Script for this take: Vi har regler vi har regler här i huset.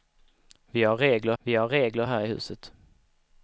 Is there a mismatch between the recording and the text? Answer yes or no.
no